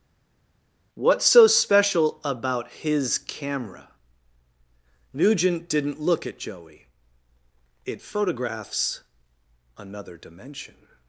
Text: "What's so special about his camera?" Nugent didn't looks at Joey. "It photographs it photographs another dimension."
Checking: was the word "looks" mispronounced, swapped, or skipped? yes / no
yes